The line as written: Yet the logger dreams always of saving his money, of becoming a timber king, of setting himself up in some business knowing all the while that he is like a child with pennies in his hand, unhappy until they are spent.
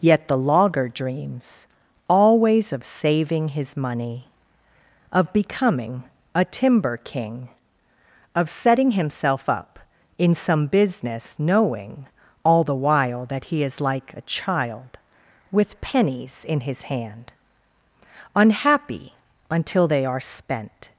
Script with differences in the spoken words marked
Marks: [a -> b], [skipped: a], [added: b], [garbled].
Yet the logger dreams always of saving his money, of becoming a timber king, of setting himself up in some business knowing all the while that he is like a child with pennies in his hand, unhappy until they are spent.